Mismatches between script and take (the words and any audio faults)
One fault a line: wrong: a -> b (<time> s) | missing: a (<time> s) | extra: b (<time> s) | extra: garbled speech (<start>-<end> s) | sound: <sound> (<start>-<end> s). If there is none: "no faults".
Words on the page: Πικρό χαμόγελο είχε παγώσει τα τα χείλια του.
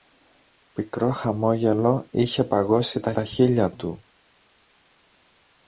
no faults